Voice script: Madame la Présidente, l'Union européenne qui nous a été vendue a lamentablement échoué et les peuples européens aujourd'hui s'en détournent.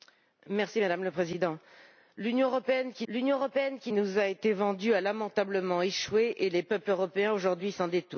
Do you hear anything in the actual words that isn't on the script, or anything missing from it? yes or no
yes